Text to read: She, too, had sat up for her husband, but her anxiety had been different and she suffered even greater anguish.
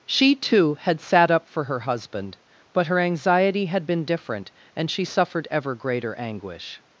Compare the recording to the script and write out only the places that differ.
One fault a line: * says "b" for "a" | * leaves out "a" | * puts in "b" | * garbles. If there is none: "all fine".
* says "ever" for "even"